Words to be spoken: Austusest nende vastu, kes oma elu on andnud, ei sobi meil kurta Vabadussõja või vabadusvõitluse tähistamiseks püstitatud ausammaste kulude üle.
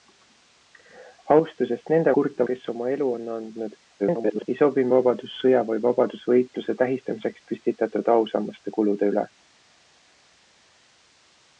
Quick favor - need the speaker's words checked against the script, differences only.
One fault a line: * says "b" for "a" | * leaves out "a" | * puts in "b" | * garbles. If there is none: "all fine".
* says "kurta" for "vastu"
* garbles
* leaves out "meil kurta"